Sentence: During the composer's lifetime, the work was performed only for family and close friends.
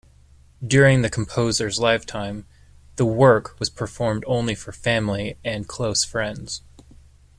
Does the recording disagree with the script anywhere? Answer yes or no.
no